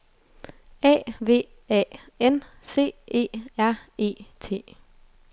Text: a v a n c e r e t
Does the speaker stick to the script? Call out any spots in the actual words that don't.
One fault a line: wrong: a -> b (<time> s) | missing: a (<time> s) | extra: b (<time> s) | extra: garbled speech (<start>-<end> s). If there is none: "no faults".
no faults